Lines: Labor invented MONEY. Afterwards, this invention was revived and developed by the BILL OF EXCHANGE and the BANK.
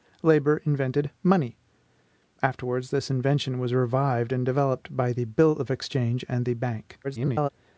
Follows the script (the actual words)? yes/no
no